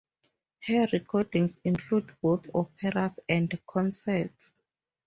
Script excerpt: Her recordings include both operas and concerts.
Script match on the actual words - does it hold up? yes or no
yes